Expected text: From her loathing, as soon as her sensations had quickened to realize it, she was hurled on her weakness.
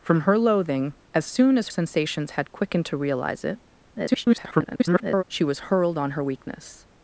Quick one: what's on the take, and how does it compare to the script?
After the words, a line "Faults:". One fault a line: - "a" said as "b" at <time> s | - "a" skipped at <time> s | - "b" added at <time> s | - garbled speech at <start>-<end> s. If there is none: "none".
From her loathing, as soon as sensations had quickened to realize it, [garbled] she was hurled on her weakness.
Faults:
- "her" skipped at 1.7 s
- garbled speech at 3.9-5.2 s